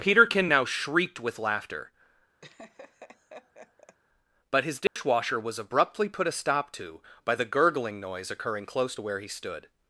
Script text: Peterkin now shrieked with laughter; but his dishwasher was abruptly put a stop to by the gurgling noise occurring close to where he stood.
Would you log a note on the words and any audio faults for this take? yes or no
yes